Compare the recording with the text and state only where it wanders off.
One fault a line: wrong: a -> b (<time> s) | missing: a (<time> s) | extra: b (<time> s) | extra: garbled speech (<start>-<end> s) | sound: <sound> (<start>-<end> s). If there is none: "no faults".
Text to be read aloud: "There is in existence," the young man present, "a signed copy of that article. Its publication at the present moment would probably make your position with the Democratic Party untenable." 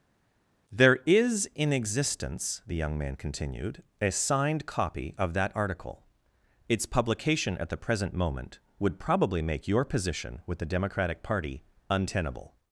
wrong: present -> continued (3.2 s)